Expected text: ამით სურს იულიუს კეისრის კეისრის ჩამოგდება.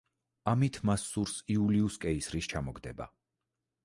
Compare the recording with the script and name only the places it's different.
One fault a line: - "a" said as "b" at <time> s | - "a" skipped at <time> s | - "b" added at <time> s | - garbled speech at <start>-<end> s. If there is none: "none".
- "მას" added at 0.9 s
- "კეისრის" skipped at 2.5 s